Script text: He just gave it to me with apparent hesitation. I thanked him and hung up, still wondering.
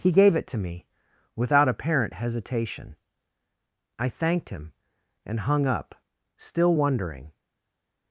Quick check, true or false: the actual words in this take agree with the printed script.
false